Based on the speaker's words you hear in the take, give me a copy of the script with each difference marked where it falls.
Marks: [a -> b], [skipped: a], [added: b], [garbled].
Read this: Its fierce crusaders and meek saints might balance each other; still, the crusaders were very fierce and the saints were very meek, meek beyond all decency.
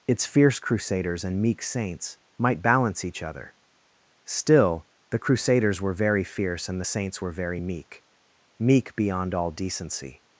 Its fierce crusaders and meek saints might balance each other; still, the crusaders were very fierce and the saints were very meek, meek beyond all decency.